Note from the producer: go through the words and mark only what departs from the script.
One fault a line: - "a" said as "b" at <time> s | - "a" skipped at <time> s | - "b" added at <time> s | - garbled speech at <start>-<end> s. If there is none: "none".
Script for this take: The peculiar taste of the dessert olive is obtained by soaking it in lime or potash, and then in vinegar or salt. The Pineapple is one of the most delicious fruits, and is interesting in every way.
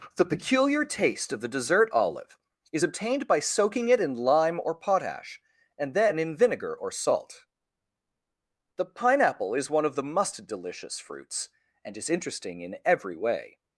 - "most" said as "must" at 10.0 s